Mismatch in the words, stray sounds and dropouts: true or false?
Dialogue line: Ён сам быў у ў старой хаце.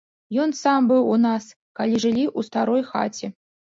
true